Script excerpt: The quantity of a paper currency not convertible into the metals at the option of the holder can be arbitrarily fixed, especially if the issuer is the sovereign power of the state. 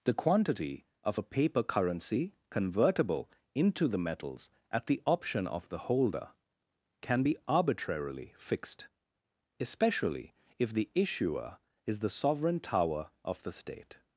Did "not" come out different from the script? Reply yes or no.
yes